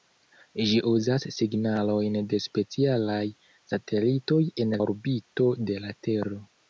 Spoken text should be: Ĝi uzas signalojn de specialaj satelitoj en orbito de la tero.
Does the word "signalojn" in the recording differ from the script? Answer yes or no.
no